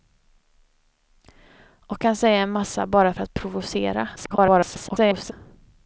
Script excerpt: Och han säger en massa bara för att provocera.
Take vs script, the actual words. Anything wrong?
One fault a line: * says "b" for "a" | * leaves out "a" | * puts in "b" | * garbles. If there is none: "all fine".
* garbles